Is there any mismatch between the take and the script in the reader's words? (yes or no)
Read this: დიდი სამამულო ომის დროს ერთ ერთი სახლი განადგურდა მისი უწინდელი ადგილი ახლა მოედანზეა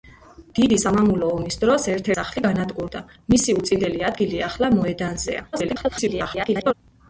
yes